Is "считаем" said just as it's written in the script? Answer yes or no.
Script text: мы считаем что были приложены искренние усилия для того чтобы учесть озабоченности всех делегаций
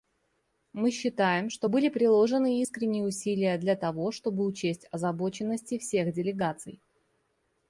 yes